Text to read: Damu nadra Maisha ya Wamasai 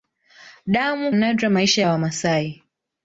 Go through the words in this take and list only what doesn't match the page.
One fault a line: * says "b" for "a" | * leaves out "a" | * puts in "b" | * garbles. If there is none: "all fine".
all fine